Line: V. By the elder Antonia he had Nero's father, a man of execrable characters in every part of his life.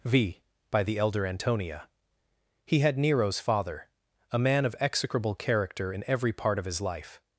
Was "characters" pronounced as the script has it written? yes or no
no